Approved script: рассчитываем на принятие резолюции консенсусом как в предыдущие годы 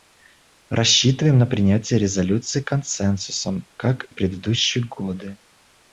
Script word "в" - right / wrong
right